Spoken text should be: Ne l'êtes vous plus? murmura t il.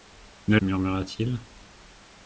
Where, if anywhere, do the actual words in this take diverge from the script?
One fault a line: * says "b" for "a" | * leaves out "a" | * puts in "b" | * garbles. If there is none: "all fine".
* leaves out "l'êtes vous plus"